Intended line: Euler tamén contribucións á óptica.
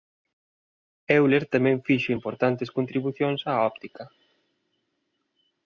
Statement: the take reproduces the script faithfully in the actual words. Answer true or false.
false